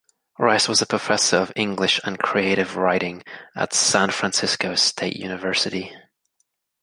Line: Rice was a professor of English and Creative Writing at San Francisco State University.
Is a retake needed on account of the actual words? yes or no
no